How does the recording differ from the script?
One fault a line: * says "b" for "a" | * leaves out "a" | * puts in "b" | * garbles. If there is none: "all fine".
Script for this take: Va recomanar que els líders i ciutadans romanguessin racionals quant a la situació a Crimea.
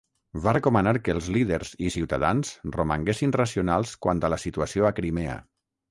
all fine